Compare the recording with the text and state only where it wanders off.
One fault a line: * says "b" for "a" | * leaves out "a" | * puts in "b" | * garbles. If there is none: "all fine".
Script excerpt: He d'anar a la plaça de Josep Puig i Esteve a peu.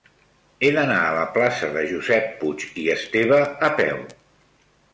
all fine